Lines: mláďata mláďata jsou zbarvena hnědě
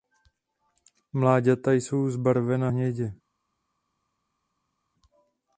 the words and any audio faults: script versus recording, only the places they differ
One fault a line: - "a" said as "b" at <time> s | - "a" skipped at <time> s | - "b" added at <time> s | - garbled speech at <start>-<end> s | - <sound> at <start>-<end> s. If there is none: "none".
- "mláďata" skipped at 1.7 s